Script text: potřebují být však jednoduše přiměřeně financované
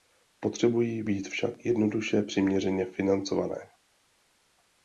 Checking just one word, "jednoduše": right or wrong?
right